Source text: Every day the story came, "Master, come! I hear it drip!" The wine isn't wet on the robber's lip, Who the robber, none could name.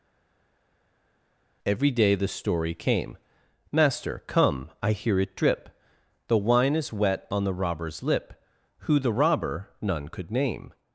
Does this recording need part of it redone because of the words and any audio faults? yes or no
yes